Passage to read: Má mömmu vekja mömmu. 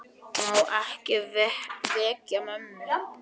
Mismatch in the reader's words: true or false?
true